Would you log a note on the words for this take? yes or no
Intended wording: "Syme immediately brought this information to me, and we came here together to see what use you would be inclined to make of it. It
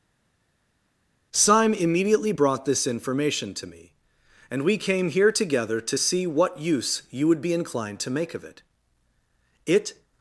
no